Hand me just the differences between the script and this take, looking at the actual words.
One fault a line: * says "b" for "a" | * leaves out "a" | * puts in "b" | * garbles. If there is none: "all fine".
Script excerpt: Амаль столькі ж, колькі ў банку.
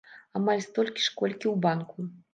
all fine